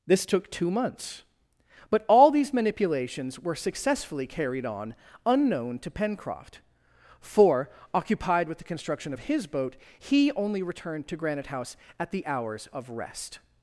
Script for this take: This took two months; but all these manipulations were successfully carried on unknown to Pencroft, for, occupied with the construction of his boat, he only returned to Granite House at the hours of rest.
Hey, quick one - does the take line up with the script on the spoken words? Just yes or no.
yes